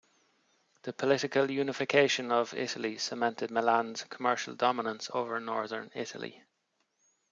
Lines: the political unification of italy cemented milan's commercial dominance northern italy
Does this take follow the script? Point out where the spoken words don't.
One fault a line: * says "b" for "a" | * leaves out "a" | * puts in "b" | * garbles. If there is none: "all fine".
* puts in "over"